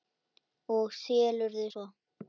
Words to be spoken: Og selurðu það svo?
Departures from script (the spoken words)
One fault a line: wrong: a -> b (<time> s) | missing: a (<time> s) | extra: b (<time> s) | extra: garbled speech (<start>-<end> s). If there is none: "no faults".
missing: það (1.7 s)